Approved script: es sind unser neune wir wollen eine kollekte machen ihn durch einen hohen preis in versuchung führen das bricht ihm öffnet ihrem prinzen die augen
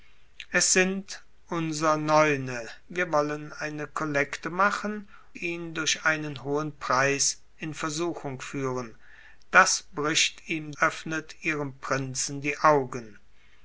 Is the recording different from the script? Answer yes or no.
no